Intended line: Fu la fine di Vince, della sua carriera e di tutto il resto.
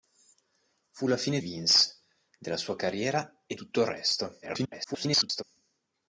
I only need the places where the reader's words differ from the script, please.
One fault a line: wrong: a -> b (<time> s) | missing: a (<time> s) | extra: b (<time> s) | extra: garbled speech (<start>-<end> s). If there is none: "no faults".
missing: di (1.4 s)
missing: di (3.5 s)
extra: garbled speech (4.4-5.4 s)